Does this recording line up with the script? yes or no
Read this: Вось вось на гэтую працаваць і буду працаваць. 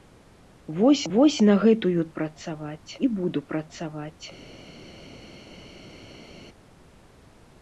yes